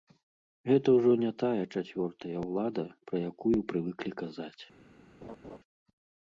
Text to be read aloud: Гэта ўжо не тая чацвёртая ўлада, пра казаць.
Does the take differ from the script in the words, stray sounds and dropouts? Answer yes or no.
yes